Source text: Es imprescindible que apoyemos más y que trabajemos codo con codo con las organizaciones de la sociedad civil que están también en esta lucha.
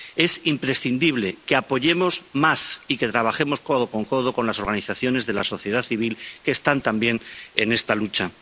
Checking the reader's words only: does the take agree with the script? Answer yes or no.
yes